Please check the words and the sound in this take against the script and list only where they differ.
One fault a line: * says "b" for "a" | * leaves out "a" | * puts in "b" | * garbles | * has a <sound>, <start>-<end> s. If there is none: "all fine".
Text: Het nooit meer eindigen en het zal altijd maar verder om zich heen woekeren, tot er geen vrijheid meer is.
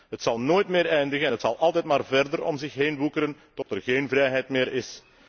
* puts in "zal"
* has a dropout, 3.6-3.7 s